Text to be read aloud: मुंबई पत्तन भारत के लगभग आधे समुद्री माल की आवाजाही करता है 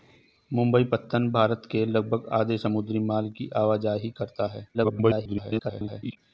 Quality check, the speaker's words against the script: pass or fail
fail